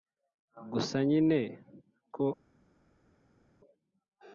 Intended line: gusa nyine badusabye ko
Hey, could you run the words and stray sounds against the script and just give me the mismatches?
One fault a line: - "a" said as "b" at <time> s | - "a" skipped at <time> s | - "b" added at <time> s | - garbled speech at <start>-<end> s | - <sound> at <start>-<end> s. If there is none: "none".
- "badusabye" skipped at 1.4 s